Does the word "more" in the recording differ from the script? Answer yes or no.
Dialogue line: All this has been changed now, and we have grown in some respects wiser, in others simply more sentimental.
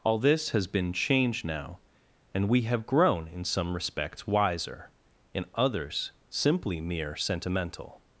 yes